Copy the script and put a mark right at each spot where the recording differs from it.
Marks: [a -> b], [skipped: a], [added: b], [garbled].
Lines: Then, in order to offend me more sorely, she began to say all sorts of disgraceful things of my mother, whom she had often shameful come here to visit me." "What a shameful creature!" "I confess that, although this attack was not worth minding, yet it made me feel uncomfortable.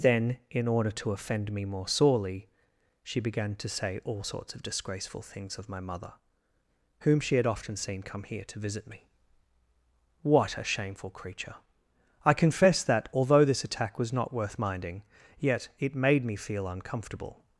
Then, in order to offend me more sorely, she began to say all sorts of disgraceful things of my mother, whom she had often [shameful -> seen] come here to visit me." "What a shameful creature!" "I confess that, although this attack was not worth minding, yet it made me feel uncomfortable.